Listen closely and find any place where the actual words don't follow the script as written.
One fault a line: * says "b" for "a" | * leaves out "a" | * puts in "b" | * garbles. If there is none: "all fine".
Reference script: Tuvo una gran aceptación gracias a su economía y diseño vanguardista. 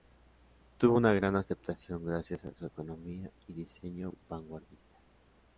all fine